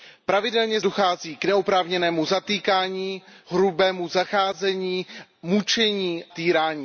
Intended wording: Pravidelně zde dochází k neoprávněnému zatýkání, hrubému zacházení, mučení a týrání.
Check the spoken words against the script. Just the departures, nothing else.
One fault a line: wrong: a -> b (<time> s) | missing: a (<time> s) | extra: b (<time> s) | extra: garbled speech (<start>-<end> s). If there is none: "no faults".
missing: zde (0.8 s)
missing: a (6.2 s)